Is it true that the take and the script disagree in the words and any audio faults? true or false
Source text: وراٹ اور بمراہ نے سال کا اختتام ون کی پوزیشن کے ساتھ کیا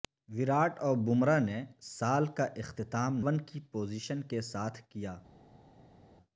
false